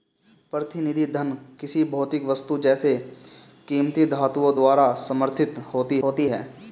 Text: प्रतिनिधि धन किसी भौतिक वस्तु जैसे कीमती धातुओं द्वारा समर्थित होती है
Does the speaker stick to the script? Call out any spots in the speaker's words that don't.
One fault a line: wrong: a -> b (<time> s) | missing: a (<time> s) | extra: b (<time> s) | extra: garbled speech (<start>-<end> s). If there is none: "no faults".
extra: होती (6.0 s)